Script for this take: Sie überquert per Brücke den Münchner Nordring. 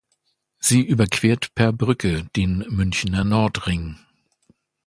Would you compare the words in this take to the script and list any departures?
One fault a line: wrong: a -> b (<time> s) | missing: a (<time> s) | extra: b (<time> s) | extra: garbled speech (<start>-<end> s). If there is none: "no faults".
no faults